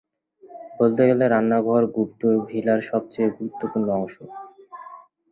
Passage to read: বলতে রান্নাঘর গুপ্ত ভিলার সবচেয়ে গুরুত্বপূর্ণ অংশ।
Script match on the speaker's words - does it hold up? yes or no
no